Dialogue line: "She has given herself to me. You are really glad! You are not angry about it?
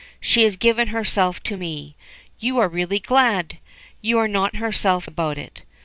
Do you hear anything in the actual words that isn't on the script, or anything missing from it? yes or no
yes